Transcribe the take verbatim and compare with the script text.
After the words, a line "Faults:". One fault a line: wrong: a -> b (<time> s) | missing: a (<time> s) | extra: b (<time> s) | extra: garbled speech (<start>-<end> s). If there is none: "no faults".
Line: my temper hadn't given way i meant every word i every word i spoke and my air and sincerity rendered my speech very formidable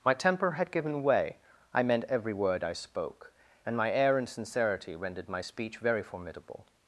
my temper had given way i meant every word i spoke and my air and sincerity rendered my speech very formidable
Faults:
wrong: hadn't -> had (0.5 s)
missing: every word i (2.7 s)